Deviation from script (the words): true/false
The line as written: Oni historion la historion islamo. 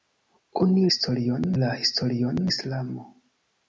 false